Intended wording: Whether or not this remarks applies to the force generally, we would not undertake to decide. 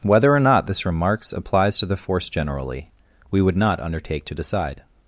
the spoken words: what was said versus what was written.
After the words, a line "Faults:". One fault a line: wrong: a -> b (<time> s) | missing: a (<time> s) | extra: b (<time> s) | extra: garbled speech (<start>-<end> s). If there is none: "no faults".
Whether or not this remarks applies to the force generally, we would not undertake to decide.
Faults:
no faults